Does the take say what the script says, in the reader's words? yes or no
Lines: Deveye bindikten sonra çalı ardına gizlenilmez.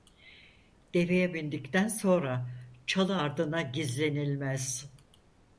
yes